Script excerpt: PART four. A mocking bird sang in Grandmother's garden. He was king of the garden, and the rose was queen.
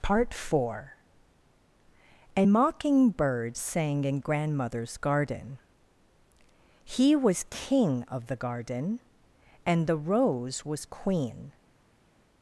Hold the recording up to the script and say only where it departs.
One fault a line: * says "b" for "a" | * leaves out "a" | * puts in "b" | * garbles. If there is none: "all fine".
all fine